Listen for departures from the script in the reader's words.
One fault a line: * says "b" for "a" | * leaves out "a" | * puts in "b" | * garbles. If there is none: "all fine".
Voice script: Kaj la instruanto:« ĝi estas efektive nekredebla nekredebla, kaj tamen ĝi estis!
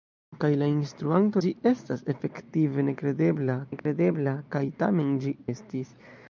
all fine